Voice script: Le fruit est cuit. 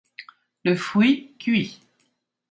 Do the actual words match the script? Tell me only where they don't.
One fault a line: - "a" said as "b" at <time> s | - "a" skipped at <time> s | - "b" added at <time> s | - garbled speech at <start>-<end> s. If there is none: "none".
- "est" skipped at 1.4 s